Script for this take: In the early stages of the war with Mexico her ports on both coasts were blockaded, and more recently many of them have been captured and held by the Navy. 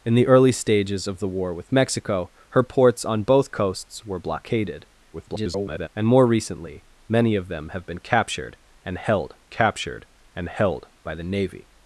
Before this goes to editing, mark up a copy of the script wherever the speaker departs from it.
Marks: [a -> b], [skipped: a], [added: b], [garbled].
In the early stages of the war with Mexico her ports on both coasts were blockaded, [garbled] and more recently many of them have been captured and held [added: captured and held] by the Navy.